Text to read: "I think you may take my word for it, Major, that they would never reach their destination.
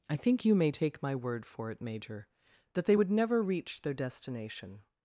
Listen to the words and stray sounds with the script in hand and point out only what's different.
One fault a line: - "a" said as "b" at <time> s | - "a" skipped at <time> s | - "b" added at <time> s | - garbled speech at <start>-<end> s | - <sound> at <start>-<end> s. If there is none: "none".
none